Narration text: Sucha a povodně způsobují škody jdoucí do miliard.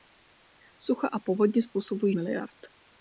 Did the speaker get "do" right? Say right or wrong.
wrong